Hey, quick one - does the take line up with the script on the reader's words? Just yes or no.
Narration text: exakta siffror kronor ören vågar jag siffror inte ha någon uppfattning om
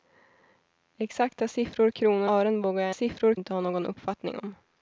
yes